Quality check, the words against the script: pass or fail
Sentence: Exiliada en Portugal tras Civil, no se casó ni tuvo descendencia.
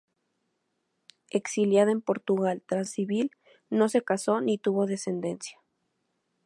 pass